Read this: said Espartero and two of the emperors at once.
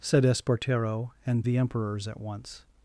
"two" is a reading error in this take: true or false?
true